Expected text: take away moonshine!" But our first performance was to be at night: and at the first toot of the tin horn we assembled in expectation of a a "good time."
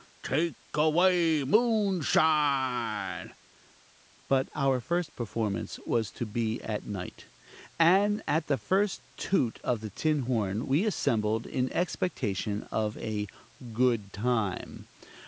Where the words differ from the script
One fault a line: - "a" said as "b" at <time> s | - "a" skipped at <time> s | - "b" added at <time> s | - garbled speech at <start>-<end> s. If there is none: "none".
- "a" skipped at 13.3 s